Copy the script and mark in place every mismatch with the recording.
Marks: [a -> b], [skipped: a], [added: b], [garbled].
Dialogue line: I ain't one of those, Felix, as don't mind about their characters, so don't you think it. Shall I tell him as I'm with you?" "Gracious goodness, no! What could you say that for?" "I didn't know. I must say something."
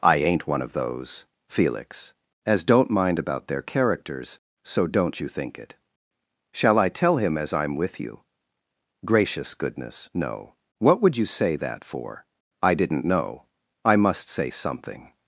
I ain't one of those, Felix, as don't mind about their characters, so don't you think it. Shall I tell him as I'm with you?" "Gracious goodness, no! What [could -> would] you say that for?" "I didn't know. I must say something."